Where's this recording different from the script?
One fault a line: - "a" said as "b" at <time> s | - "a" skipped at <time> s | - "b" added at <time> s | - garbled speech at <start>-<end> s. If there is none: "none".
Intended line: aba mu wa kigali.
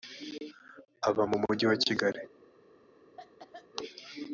- "mujyi" added at 1.4 s